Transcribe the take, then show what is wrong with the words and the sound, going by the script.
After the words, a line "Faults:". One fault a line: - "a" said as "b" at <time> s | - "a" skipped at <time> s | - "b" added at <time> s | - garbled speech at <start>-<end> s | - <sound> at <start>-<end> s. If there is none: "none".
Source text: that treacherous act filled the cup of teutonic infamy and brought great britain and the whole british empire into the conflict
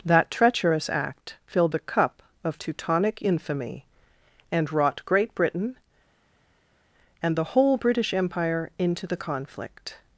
that treacherous act filled the cup of teutonic infamy and wrought great britain and the whole british empire into the conflict
Faults:
- "brought" said as "wrought" at 4.7 s